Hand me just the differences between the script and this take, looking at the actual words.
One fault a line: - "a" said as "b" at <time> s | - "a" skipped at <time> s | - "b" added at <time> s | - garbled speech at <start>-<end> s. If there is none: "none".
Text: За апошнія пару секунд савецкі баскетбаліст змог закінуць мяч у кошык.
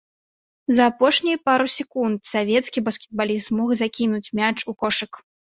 none